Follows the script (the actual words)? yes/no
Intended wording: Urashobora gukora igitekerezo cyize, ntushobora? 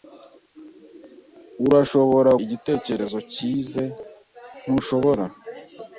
no